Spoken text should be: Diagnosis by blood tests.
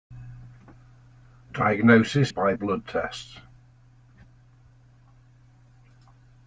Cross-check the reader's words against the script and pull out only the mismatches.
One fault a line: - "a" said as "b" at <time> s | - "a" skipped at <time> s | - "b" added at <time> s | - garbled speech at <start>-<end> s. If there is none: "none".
none